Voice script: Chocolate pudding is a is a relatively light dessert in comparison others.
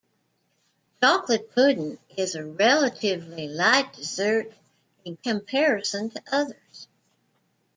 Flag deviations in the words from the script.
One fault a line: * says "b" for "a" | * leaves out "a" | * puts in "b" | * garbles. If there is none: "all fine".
* leaves out "is a"
* puts in "to"